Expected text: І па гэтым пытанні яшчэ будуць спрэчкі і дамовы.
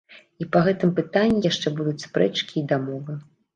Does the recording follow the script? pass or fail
pass